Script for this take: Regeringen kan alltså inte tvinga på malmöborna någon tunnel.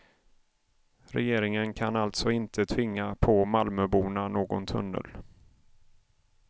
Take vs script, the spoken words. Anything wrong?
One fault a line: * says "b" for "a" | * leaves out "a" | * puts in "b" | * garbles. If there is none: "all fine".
all fine